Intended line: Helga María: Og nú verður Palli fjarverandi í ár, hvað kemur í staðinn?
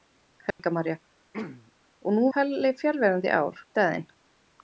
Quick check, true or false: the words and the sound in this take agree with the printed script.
false